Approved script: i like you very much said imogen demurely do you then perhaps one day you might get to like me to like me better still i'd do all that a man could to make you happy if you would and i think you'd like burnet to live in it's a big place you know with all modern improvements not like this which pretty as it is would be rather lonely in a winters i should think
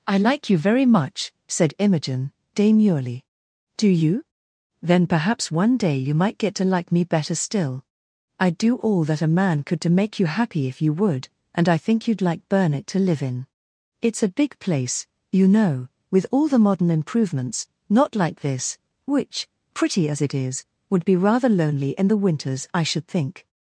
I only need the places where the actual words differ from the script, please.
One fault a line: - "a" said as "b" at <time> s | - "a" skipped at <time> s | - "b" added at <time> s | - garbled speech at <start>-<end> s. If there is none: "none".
- "to like me" skipped at 7.0 s
- "the" added at 16.5 s
- "a" said as "the" at 22.1 s